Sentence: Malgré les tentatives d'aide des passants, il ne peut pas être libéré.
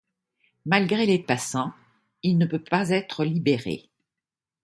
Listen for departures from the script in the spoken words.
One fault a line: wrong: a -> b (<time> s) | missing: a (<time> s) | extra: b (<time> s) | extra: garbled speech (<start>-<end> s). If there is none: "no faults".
missing: tentatives d'aide des (1.2 s)